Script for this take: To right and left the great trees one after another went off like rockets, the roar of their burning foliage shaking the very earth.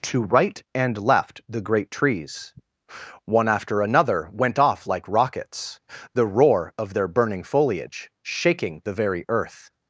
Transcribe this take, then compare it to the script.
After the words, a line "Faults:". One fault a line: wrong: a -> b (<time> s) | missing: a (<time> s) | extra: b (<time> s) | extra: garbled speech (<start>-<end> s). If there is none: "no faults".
To right and left the great trees one after another went off like rockets, the roar of their burning foliage shaking the very earth.
Faults:
no faults